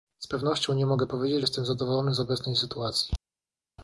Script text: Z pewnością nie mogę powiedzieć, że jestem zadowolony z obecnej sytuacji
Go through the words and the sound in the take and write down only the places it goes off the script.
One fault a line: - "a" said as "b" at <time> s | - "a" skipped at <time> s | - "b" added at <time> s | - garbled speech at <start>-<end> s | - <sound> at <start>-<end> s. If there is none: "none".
- "że" skipped at 1.4 s